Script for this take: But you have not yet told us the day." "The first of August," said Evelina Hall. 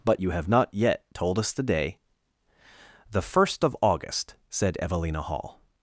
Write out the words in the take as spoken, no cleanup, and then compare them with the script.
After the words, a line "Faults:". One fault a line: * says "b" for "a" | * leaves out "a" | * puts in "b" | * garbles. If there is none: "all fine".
But you have not yet told us the day." "The first of August," said Evelina Hall.
Faults:
all fine